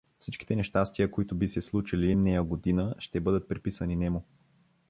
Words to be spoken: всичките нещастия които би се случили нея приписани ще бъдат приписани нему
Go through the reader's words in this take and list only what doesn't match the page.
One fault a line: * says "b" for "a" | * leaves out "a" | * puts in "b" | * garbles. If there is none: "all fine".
* says "година" for "приписани"